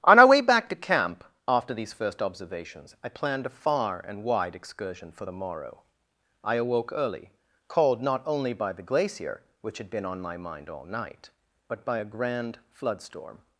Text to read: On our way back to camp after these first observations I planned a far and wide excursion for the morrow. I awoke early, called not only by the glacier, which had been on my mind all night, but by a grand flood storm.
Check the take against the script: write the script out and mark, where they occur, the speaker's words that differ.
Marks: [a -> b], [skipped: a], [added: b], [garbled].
On our way back to camp after these first observations I planned a far and wide excursion for the morrow. I awoke early, called not only by the glacier, which had been on my mind all night, but by a grand flood storm.